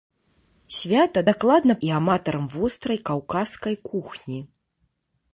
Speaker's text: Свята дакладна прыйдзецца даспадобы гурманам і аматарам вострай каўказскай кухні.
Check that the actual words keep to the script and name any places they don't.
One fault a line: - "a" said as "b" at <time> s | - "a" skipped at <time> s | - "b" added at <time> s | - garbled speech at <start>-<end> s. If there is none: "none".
- "прыйдзецца даспадобы гурманам" skipped at 1.7 s